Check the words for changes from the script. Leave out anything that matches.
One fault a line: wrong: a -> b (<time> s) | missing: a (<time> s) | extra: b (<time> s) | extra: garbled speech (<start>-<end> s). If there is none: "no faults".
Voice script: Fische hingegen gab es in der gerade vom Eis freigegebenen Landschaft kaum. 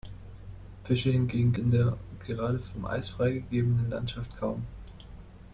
missing: gab es (1.5 s)